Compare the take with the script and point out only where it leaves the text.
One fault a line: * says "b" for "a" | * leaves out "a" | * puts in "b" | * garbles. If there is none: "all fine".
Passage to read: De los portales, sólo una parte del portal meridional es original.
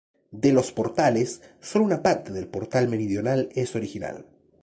all fine